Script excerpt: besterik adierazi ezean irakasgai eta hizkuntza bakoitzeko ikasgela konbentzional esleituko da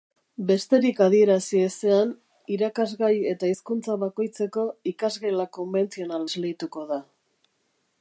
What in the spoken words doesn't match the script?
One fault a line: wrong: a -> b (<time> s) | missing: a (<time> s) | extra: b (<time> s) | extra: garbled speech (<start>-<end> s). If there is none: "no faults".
no faults